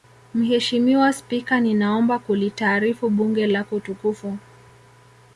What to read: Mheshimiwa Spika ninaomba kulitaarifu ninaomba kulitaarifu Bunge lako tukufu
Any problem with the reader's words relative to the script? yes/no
yes